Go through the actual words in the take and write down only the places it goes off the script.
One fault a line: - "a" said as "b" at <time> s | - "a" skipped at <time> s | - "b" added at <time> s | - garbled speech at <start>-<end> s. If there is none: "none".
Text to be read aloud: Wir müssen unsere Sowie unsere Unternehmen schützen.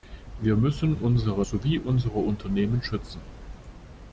none